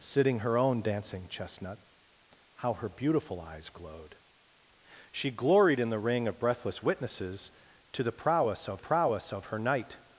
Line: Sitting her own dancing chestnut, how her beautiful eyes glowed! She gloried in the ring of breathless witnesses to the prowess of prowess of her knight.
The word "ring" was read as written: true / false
true